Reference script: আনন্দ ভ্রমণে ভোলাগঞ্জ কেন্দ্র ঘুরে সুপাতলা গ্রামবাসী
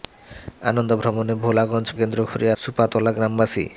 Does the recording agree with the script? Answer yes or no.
yes